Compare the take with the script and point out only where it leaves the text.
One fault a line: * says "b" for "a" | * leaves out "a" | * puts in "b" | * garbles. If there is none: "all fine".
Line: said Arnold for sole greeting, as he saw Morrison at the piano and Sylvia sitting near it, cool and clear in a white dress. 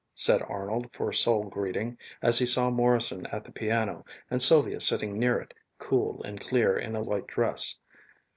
all fine